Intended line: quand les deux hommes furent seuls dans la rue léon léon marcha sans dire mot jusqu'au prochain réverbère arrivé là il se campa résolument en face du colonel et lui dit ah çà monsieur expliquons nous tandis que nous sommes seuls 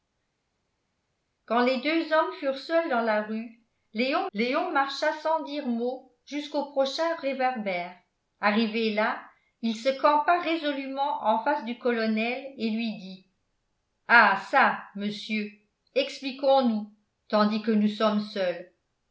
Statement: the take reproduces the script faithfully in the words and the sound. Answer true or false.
true